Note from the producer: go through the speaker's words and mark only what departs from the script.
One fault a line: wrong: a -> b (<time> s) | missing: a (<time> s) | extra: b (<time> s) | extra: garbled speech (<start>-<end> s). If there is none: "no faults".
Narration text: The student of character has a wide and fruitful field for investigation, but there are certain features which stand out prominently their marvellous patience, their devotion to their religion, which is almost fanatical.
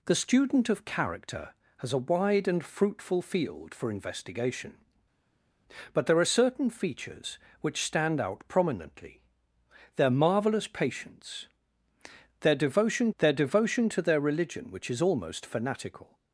extra: their devotion (13.2 s)